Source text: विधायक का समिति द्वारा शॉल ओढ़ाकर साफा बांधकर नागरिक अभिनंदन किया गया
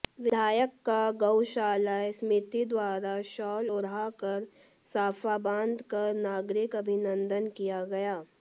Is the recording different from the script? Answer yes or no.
yes